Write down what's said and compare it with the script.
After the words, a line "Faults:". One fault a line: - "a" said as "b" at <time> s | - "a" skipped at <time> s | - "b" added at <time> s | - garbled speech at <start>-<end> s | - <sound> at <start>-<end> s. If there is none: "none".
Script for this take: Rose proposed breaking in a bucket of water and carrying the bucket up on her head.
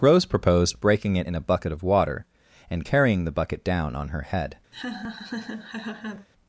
Rose proposed breaking it in a bucket of water and carrying the bucket down on her head.
Faults:
- "it" added at 1.1 s
- "up" said as "down" at 3.6 s
- laugh at 4.7-6.3 s